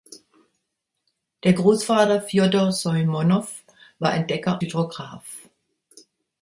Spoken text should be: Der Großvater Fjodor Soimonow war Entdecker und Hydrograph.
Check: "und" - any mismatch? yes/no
yes